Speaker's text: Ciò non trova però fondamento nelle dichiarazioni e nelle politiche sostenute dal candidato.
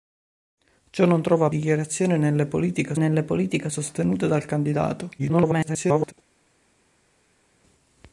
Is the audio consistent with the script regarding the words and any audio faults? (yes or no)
no